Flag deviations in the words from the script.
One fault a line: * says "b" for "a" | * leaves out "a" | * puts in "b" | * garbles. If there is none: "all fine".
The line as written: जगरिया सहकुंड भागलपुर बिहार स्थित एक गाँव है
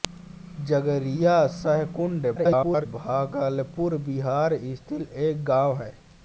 * garbles